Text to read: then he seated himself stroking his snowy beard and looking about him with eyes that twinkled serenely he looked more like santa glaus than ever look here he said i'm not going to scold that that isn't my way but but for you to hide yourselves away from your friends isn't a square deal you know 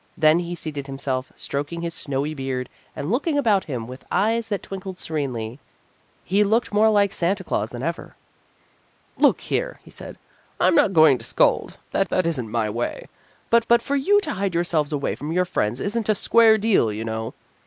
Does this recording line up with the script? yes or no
yes